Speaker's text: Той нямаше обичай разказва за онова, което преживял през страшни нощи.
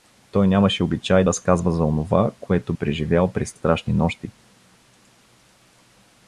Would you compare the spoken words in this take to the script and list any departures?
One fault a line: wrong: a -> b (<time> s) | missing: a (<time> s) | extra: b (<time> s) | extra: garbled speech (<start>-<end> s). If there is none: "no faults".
no faults